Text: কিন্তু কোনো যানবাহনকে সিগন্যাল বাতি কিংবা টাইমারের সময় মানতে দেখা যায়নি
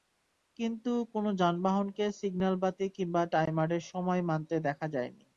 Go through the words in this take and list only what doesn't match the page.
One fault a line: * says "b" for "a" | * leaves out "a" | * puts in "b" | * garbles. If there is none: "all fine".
all fine